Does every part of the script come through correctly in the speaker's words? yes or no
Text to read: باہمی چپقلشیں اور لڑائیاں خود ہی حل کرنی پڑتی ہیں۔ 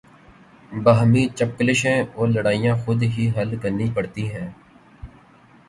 yes